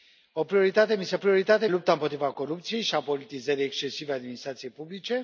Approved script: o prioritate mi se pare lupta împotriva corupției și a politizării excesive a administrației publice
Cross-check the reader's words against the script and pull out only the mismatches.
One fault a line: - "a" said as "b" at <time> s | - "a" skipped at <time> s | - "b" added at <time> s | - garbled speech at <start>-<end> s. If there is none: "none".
- "pare" said as "prioritate" at 1.2 s